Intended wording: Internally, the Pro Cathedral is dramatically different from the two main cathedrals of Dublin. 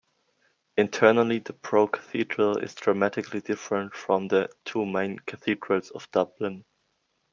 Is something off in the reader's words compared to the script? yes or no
no